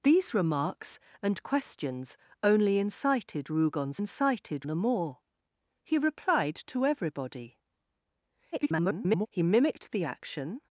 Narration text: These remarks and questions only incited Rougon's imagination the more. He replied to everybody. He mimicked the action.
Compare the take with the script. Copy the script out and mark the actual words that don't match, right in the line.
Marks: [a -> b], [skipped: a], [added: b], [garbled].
These remarks and questions only incited Rougon's [imagination -> incited] the more. He replied to everybody. [garbled] He mimicked the action.